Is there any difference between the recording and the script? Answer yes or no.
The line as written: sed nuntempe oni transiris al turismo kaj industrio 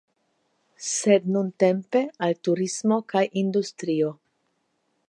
yes